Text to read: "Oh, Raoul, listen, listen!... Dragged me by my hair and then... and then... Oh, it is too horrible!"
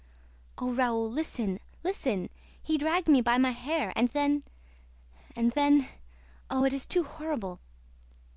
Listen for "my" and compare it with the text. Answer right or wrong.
right